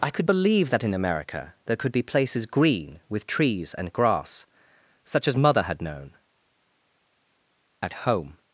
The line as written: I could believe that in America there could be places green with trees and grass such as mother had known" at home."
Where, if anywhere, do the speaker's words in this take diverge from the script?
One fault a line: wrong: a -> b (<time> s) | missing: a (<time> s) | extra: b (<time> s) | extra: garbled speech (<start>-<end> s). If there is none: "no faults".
no faults